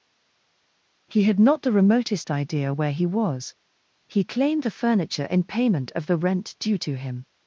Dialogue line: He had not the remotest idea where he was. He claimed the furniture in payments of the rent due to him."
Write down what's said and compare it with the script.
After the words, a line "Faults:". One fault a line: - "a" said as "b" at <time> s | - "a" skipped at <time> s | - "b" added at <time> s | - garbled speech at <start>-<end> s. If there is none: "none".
He had not the remotest idea where he was. He claimed the furniture in payment of the rent due to him."
Faults:
- "payments" said as "payment" at 5.4 s